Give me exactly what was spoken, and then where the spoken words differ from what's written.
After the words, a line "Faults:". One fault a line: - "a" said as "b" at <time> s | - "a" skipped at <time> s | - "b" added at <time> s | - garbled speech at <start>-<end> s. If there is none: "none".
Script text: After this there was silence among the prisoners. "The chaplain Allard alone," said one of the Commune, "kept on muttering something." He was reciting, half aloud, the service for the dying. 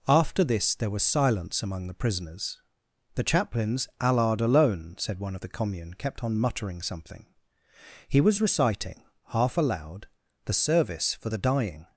After this there was silence among the prisoners. "The chaplains Allard alone," said one of the Commune, "kept on muttering something." He was reciting, half aloud, the service for the dying.
Faults:
- "chaplain" said as "chaplains" at 3.2 s